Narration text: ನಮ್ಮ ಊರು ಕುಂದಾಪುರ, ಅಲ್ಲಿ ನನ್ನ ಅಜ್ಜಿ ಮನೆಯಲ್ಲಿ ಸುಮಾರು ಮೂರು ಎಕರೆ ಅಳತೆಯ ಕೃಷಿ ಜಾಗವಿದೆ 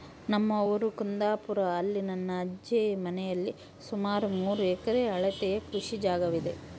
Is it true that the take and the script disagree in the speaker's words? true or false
false